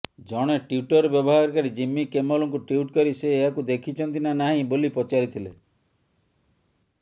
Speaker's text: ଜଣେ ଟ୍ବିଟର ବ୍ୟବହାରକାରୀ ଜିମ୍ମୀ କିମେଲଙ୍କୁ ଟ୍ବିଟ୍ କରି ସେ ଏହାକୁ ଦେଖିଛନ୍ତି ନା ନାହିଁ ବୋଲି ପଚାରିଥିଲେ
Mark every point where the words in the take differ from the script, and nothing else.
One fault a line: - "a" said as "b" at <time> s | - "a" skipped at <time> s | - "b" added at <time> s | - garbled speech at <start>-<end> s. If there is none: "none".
none